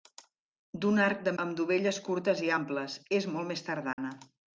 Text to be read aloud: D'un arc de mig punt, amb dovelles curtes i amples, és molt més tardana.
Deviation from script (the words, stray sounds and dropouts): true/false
true